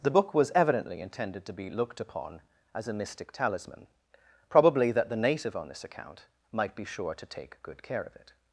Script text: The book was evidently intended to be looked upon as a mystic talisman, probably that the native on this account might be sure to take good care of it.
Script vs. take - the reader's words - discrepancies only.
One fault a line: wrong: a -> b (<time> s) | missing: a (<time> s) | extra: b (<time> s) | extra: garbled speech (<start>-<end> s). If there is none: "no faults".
no faults